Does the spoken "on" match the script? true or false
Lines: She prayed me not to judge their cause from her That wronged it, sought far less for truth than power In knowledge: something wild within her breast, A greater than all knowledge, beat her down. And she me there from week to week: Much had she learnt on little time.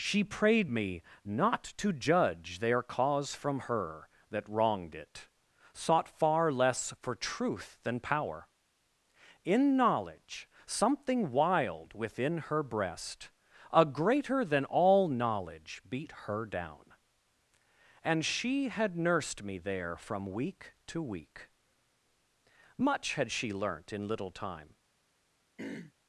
false